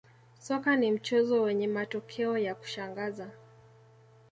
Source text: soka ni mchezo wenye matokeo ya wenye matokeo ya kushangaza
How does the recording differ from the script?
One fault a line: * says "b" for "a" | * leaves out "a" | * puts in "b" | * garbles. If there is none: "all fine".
* leaves out "wenye matokeo ya"